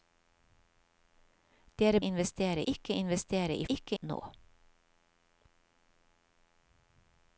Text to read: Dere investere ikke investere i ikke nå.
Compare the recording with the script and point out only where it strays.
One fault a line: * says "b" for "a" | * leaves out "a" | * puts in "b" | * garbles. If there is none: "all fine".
all fine